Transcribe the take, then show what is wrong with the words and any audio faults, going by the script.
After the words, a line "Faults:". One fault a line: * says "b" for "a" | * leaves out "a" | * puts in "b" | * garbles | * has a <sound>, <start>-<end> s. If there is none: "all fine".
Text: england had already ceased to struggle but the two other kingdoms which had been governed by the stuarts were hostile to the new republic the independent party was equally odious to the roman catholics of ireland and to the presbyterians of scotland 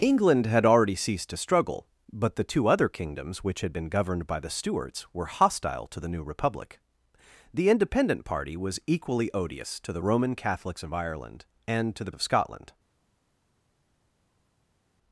england had already ceased to struggle but the two other kingdoms which had been governed by the stuarts were hostile to the new republic the independent party was equally odious to the roman catholics of ireland and to the of scotland
Faults:
* leaves out "presbyterians"